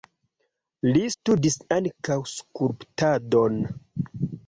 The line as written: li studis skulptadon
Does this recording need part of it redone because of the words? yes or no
yes